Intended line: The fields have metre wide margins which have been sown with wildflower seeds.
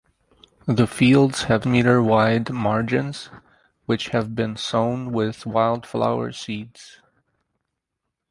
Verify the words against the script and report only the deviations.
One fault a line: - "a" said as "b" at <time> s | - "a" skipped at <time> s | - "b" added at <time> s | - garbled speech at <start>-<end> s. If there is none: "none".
none